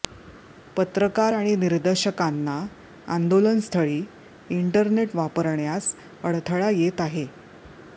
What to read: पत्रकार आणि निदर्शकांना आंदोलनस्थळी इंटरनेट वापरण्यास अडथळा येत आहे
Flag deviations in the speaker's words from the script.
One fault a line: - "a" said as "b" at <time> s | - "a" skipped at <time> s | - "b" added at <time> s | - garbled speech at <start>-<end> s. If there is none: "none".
none